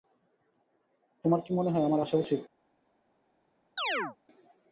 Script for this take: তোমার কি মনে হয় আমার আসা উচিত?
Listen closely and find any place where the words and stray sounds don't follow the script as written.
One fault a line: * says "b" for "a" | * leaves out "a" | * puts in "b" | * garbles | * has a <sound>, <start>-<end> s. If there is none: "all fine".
* has a chirp, 3.8-4.2 s